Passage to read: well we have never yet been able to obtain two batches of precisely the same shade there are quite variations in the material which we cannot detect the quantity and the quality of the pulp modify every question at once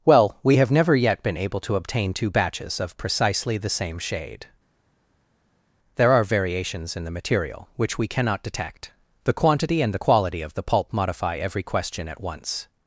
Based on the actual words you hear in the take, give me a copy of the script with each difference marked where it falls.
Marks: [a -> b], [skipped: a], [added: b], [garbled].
well we have never yet been able to obtain two batches of precisely the same shade there are [skipped: quite] variations in the material which we cannot detect the quantity and the quality of the pulp modify every question at once